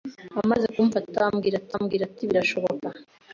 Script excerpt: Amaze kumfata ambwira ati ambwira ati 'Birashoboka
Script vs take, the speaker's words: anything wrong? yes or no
no